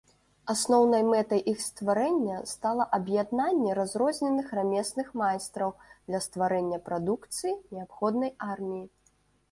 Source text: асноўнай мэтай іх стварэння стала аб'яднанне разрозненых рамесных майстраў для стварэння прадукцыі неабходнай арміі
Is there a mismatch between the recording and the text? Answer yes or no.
no